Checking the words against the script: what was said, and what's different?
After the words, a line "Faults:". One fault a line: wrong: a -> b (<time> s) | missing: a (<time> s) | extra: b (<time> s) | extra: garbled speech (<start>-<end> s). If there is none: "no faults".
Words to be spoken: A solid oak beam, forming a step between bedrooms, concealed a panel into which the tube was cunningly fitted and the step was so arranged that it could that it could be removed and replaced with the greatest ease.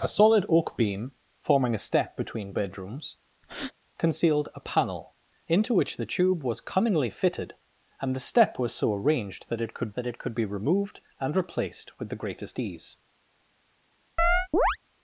A solid oak beam, forming a step between bedrooms, concealed a panel into which the tube was cunningly fitted and the step was so arranged that it could that it could be removed and replaced with the greatest ease.
Faults:
no faults